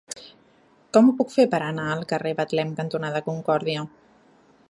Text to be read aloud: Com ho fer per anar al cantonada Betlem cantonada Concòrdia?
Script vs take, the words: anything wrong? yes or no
yes